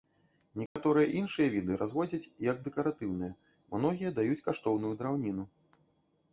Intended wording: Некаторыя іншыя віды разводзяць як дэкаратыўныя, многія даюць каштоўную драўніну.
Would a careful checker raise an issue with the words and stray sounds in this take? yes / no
yes